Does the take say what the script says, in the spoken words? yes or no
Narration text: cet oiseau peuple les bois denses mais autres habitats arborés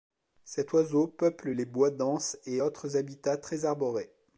no